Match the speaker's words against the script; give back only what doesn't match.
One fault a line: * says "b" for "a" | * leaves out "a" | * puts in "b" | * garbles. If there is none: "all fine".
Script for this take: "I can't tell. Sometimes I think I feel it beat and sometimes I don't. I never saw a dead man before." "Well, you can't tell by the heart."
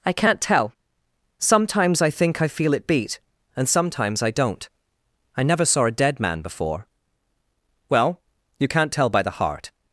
all fine